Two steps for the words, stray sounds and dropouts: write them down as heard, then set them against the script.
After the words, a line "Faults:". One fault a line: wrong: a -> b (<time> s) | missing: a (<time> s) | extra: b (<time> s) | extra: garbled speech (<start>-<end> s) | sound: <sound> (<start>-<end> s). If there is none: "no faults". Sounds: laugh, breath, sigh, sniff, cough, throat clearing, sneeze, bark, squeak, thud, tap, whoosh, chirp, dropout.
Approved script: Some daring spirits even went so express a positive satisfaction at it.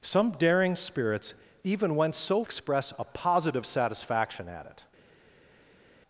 Some daring spirits even went so express a positive satisfaction at it.
Faults:
no faults